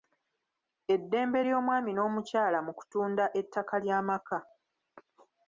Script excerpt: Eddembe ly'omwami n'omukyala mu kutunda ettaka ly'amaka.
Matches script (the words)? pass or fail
pass